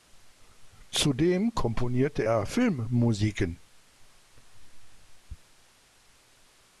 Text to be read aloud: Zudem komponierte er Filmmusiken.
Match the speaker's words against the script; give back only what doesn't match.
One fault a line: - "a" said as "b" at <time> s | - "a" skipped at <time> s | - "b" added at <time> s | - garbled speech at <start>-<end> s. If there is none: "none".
none